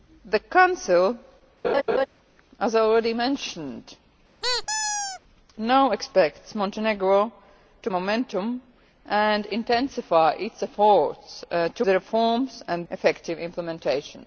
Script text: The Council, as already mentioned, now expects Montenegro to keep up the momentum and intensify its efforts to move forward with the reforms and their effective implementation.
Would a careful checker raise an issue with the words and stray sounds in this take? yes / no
yes